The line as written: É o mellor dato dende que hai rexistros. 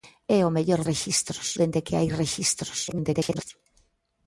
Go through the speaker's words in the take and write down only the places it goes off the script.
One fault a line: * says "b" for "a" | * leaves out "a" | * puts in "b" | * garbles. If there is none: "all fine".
* says "rexistros" for "dato"
* garbles